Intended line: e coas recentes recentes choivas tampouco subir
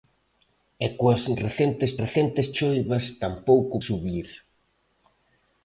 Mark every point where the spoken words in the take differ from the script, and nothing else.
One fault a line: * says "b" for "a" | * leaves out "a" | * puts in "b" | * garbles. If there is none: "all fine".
all fine